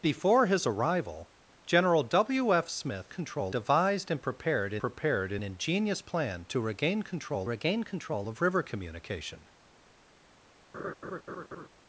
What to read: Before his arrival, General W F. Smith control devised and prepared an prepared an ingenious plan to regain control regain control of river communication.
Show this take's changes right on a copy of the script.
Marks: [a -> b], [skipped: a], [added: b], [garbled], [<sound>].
Before his arrival, General W F. Smith control devised and prepared an prepared an ingenious plan to regain control regain control of river communication. [laugh]